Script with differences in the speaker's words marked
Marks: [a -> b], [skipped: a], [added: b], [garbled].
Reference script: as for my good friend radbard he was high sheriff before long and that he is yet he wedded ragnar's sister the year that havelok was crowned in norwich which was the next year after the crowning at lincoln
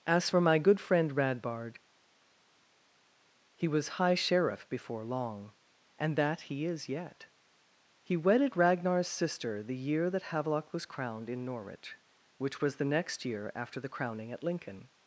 as for my good friend radbard he was high sheriff before long and that he is yet he wedded ragnar's sister the year that havelok was crowned in norwich which was the next year after the crowning at lincoln